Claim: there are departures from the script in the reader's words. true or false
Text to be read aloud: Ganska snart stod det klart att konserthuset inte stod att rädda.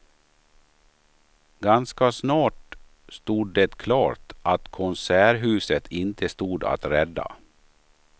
false